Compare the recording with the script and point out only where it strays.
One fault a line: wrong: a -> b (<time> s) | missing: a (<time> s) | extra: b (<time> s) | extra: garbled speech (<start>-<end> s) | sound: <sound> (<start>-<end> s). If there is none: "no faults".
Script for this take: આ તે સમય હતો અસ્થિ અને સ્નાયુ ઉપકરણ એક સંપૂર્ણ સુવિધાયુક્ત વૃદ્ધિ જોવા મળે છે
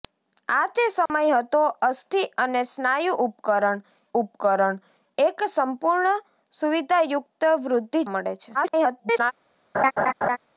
sound: dropout (1.1-1.1 s)
extra: ઉપકરણ (4.2 s)
missing: જોવા (8.0 s)
extra: garbled speech (8.5-9.3 s)
sound: laugh (9.7-10.4 s)